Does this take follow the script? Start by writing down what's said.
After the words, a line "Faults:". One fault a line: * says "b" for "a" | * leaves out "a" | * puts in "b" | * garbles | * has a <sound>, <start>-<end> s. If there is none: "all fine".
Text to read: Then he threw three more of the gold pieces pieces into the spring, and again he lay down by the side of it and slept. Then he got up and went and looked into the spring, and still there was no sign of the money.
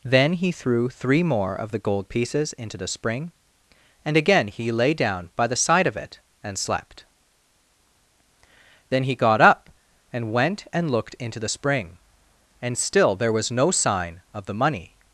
Then he threw three more of the gold pieces into the spring, and again he lay down by the side of it and slept. Then he got up and went and looked into the spring, and still there was no sign of the money.
Faults:
* leaves out "pieces"